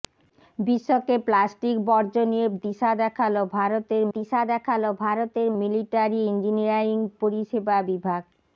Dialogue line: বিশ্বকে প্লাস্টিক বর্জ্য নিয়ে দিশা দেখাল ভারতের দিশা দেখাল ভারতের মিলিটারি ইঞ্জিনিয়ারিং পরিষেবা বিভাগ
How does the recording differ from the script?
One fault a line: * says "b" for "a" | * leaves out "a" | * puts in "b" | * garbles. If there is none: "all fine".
all fine